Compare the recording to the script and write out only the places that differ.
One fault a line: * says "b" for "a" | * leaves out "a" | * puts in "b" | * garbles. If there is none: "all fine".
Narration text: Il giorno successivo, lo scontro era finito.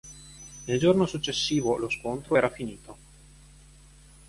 all fine